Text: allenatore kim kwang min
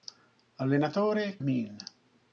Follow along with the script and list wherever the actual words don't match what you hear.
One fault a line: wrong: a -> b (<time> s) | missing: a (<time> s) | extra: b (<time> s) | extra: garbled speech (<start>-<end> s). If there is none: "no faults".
missing: kim kwang (1.4 s)